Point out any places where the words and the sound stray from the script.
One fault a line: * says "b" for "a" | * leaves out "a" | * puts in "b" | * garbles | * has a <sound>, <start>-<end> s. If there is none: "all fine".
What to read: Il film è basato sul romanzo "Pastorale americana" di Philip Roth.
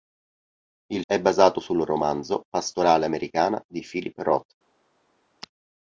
* leaves out "film"